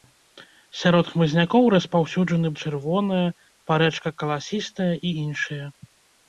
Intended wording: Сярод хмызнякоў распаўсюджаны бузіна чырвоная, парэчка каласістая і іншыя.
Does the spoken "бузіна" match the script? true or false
false